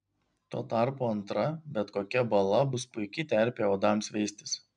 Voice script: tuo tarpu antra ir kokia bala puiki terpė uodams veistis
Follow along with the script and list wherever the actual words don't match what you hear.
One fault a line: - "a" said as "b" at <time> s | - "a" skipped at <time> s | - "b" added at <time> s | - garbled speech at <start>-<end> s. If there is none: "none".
- "ir" said as "bet" at 1.8 s
- "bus" added at 2.7 s